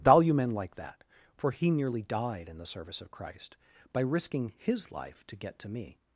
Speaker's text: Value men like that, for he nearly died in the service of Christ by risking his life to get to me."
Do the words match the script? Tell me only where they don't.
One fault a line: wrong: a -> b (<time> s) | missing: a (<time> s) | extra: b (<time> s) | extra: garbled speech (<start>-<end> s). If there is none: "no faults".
no faults